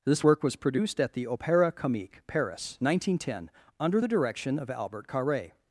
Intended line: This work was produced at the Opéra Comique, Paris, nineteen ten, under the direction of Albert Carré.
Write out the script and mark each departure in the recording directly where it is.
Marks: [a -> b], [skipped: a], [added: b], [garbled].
This work was produced at the Opéra Comique, Paris, nineteen ten, under the direction of Albert Carré.